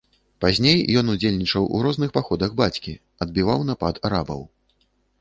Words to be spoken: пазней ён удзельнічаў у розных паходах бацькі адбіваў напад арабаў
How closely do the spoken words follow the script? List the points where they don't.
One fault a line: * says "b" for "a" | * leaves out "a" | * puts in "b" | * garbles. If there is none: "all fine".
all fine